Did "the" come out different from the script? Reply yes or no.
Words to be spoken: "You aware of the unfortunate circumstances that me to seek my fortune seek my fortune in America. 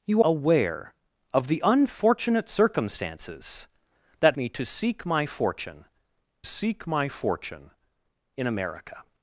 no